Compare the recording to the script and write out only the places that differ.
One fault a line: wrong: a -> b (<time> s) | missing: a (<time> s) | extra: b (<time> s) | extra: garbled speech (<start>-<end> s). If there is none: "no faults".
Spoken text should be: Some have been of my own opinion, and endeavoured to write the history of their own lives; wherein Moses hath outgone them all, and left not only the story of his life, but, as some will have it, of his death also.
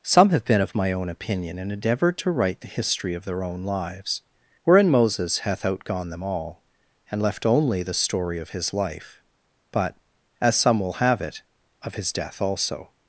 missing: not (7.4 s)